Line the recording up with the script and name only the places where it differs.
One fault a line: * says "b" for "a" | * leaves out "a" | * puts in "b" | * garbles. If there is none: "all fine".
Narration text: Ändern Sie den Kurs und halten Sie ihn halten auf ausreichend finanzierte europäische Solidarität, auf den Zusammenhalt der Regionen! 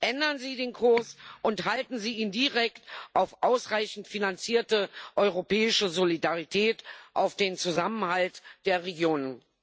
* says "direkt" for "halten"